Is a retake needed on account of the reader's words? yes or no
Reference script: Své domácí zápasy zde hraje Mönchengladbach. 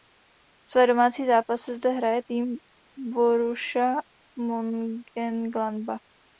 yes